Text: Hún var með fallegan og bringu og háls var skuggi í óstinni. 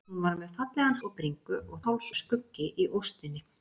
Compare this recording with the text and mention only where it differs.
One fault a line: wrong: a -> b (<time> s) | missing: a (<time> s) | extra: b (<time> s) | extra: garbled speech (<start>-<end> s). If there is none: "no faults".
no faults